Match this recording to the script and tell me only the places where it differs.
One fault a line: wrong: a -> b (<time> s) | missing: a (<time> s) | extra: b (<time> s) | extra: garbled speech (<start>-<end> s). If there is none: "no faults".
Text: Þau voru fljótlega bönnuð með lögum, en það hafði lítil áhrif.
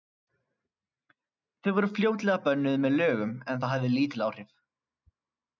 no faults